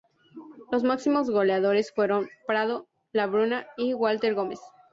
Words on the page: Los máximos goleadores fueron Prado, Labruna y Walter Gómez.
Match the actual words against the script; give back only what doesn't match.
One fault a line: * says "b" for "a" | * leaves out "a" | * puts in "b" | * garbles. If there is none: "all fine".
all fine